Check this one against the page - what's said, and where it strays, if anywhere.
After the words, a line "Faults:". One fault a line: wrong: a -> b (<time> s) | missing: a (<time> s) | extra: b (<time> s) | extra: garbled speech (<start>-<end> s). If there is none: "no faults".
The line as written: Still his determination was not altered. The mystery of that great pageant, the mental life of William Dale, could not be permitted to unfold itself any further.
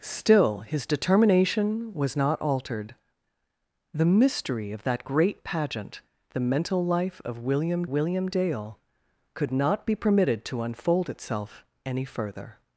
Still his determination was not altered. The mystery of that great pageant, the mental life of William William Dale, could not be permitted to unfold itself any further.
Faults:
extra: William (7.9 s)